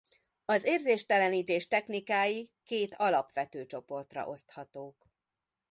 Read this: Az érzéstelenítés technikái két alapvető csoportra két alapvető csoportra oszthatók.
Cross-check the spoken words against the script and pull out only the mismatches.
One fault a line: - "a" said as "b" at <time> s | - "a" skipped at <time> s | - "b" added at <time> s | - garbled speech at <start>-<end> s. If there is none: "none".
- "két alapvető csoportra" skipped at 4.3 s